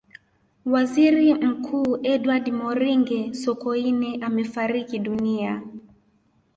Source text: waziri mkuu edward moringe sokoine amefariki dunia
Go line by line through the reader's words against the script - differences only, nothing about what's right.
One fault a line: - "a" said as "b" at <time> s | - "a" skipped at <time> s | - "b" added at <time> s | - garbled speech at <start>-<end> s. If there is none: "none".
none